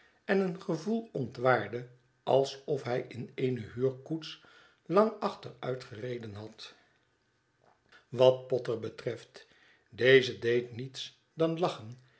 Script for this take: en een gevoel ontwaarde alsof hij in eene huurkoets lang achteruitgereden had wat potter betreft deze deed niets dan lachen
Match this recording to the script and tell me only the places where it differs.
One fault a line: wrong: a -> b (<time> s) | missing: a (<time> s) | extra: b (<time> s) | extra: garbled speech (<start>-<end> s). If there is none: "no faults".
no faults